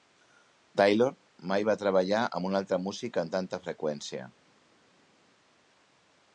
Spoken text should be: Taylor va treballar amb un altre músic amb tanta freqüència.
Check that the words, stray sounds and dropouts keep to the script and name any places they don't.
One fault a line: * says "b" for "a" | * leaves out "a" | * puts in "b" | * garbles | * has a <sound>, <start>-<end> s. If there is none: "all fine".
* puts in "mai"